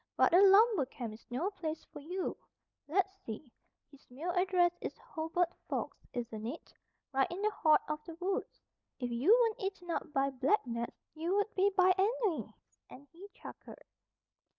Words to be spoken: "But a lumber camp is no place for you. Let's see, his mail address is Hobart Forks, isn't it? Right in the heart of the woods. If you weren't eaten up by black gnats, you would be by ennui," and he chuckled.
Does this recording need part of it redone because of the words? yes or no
no